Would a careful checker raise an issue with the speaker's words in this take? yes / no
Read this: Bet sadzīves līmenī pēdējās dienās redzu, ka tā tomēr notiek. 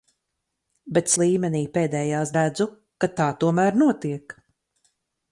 yes